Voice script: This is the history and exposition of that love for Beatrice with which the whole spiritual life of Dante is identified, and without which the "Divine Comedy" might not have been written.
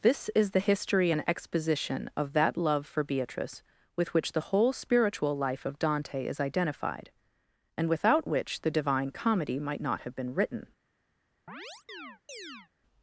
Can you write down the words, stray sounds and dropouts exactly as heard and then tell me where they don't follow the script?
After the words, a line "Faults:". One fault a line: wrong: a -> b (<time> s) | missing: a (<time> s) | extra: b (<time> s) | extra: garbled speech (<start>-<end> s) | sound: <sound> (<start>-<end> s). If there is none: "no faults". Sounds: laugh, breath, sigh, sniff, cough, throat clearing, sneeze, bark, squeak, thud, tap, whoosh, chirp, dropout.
This is the history and exposition of that love for Beatrice with which the whole spiritual life of Dante is identified, and without which the "Divine Comedy" might not have been written.
Faults:
sound: chirp (11.5-12.7 s)